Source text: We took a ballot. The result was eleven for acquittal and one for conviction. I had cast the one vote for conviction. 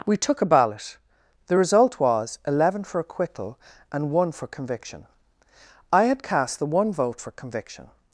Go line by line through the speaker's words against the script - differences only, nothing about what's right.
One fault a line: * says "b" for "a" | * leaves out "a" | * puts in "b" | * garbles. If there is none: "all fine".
all fine